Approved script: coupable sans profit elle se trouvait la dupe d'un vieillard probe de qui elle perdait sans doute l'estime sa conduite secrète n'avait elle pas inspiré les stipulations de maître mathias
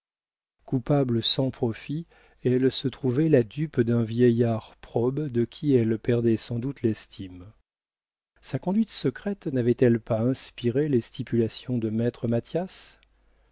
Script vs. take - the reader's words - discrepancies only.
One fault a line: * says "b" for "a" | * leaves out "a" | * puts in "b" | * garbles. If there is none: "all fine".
all fine